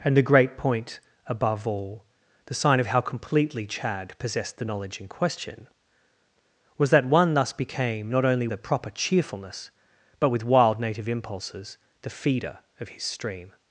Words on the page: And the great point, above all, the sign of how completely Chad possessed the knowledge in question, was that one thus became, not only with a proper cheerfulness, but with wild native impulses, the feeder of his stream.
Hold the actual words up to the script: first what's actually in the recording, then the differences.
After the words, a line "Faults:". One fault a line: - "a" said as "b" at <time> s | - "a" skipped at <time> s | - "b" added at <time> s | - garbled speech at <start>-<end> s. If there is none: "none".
And the great point, above all, the sign of how completely Chad possessed the knowledge in question, was that one thus became, not only a proper cheerfulness, but with wild native impulses, the feeder of his stream.
Faults:
- "with" skipped at 8.5 s